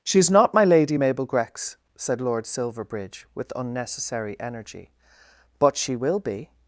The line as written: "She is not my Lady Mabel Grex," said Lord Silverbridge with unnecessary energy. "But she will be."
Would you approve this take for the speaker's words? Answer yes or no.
yes